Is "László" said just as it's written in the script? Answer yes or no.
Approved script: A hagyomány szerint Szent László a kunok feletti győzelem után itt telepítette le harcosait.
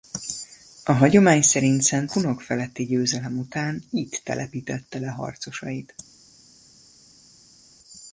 no